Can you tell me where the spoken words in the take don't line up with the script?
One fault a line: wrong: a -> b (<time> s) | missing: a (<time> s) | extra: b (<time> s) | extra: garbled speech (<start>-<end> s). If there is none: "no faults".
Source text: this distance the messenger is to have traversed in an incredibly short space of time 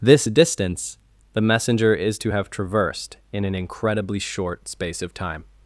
no faults